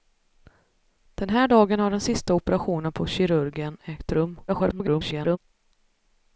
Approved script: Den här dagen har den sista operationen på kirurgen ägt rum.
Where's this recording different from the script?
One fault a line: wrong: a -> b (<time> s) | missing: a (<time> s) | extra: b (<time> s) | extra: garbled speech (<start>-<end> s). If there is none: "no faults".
extra: garbled speech (4.5-5.4 s)